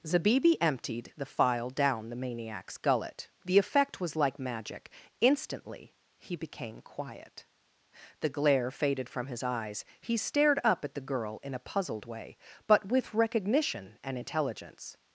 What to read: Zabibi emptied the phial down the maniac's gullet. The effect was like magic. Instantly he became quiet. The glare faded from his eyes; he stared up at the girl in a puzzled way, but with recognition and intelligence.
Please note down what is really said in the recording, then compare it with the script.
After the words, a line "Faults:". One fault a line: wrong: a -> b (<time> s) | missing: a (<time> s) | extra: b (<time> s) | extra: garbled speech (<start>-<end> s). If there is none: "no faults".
Zabibi emptied the phial down the maniac's gullet. The effect was like magic. Instantly he became quiet. The glare faded from his eyes; he stared up at the girl in a puzzled way, but with recognition and intelligence.
Faults:
no faults